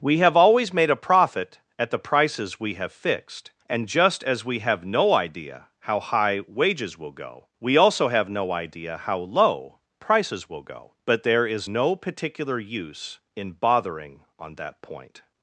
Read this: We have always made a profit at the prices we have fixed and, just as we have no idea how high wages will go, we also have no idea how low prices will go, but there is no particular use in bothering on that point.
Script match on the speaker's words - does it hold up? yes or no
yes